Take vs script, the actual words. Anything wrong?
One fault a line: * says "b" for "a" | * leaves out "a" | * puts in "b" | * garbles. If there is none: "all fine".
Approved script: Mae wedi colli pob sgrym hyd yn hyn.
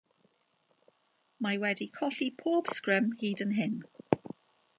all fine